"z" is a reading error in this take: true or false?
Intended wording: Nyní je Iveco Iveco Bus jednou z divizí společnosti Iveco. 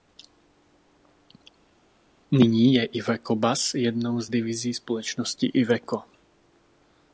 false